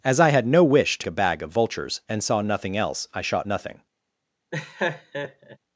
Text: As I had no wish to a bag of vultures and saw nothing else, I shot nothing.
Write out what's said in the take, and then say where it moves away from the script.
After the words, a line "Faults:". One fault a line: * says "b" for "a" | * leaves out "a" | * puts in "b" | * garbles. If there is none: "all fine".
As I had no wish to a bag of vultures and saw nothing else, I shot nothing.
Faults:
all fine